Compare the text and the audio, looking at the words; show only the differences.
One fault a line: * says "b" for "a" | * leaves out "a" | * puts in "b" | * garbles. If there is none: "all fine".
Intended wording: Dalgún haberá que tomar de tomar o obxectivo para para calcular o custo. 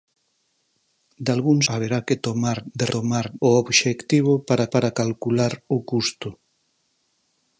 all fine